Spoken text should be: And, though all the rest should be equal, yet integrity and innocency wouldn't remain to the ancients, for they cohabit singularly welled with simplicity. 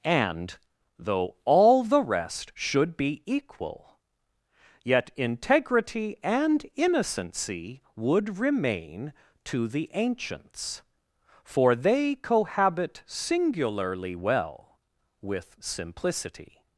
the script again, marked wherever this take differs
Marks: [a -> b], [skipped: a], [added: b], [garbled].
And, though all the rest should be equal, yet integrity and innocency [wouldn't -> would] remain to the ancients, for they cohabit singularly [welled -> well] with simplicity.